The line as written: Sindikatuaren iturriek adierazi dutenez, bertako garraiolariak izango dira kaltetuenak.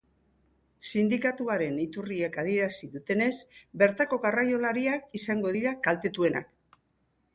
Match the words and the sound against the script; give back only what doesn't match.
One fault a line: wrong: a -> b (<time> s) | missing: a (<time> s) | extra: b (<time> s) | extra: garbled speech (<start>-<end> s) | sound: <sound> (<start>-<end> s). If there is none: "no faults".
no faults